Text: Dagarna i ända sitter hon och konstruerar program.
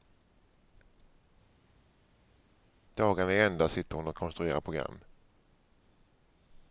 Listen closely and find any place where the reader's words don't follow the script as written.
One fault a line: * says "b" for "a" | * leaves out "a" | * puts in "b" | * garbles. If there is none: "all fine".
all fine